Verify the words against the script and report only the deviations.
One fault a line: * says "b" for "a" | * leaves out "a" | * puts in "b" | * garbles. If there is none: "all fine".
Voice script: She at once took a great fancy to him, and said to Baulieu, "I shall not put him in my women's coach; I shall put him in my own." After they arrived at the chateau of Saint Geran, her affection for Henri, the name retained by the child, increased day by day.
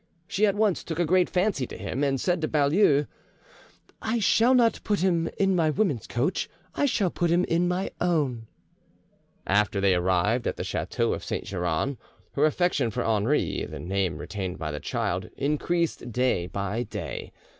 all fine